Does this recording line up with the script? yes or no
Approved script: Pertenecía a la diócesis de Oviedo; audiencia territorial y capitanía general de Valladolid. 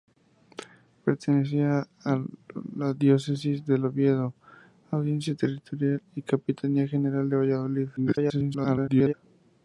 no